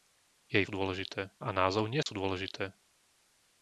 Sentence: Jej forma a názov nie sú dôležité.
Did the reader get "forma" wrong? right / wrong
wrong